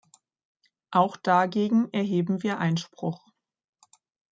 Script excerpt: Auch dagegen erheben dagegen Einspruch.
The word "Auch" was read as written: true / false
true